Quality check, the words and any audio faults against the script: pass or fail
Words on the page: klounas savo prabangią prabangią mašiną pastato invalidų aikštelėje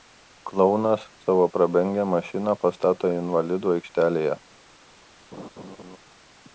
fail